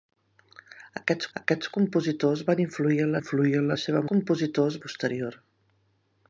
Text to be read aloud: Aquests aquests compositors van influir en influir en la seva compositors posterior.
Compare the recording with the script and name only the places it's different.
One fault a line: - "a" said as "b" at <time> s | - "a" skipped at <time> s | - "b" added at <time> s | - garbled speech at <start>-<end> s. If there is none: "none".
none